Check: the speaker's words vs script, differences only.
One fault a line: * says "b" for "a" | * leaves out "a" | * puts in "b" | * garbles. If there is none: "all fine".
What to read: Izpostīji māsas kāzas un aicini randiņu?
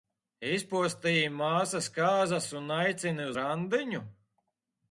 all fine